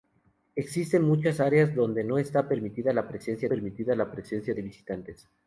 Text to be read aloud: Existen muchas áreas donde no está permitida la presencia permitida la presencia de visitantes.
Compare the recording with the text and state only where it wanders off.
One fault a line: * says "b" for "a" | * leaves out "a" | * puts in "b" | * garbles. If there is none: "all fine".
all fine